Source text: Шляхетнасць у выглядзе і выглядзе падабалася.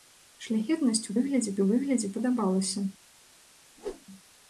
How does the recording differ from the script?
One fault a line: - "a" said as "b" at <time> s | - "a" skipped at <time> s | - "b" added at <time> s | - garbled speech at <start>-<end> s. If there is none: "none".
none